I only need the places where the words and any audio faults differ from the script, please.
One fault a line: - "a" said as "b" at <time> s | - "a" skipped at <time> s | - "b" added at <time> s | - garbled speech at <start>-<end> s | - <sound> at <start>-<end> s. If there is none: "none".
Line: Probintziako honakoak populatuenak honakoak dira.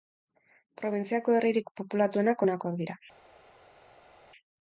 - "honakoak" said as "herririk" at 1.4 s